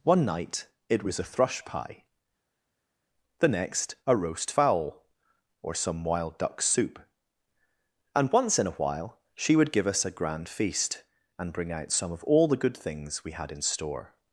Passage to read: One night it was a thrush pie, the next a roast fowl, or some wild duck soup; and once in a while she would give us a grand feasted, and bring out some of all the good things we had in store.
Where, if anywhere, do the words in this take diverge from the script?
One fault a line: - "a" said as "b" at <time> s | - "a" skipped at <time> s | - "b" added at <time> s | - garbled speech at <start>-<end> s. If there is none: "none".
- "feasted" said as "feast" at 10.5 s